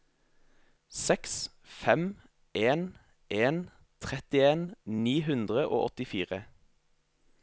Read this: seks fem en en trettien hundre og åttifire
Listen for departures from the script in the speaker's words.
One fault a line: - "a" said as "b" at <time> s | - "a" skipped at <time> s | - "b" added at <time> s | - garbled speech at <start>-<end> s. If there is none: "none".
- "ni" added at 5.1 s